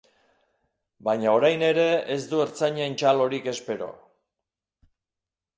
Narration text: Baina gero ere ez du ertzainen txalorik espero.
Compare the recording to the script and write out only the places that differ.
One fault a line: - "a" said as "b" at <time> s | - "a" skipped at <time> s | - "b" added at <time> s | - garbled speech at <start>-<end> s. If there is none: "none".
- "gero" said as "orain" at 1.4 s